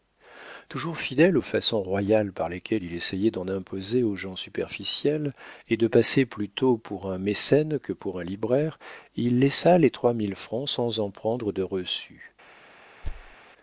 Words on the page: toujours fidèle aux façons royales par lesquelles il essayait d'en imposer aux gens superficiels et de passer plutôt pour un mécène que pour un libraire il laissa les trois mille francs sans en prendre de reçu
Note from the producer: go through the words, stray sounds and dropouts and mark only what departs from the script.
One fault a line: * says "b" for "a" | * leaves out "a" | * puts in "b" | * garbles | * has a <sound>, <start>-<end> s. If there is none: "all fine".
* has a thud, 13.0-13.4 s